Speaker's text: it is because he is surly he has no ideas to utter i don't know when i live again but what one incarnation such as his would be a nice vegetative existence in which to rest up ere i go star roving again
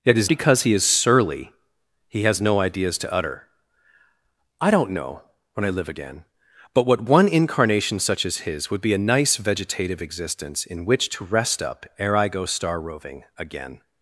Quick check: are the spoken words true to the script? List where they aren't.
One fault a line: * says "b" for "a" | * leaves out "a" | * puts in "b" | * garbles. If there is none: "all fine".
all fine